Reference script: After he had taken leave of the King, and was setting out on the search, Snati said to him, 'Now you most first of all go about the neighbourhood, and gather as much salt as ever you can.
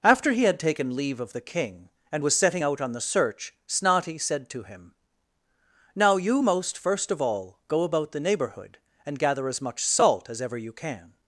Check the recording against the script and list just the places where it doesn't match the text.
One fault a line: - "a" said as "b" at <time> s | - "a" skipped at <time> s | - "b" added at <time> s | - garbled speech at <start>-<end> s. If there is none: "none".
none